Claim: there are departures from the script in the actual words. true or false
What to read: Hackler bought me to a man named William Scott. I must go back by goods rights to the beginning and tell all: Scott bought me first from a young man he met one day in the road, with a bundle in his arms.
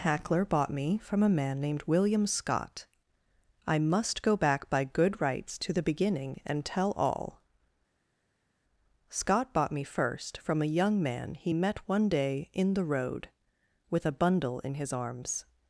true